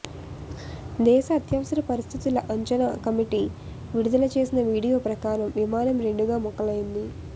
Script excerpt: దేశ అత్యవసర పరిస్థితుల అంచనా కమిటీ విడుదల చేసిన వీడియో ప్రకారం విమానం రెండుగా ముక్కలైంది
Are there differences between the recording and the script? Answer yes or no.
no